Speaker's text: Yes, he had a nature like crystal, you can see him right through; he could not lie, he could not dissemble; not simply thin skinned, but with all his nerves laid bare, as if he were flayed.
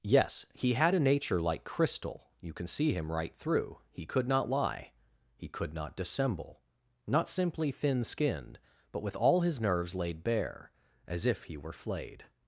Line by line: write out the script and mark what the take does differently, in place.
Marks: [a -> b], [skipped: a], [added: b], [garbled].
Yes, he had a nature like crystal, you can see him right through; he could not lie, he could not dissemble; not simply thin skinned, but with all his nerves laid bare, as if he were flayed.